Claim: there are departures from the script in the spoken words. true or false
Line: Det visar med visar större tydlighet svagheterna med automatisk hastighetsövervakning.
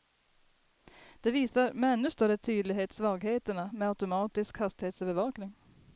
true